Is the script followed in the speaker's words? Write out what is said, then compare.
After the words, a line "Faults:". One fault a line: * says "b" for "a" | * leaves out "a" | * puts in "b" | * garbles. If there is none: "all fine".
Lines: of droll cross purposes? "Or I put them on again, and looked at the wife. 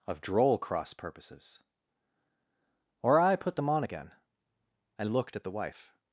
of droll cross purposes? "Or I put them on again, and looked at the wife.
Faults:
all fine